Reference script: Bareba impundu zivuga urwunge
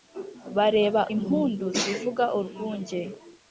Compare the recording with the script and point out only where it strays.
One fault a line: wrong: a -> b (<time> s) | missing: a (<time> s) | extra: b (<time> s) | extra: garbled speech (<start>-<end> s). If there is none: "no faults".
no faults